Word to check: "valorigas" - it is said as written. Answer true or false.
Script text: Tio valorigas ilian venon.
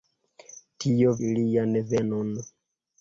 false